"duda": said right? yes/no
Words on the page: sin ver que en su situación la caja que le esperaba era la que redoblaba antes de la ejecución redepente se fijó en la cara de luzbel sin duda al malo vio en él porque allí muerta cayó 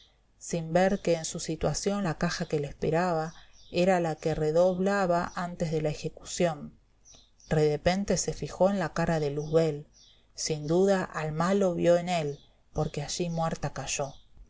yes